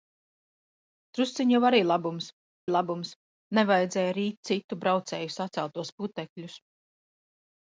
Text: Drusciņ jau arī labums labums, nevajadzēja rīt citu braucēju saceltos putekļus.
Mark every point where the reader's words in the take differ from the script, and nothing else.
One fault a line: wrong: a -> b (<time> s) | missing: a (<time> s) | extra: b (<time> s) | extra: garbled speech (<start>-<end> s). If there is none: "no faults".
no faults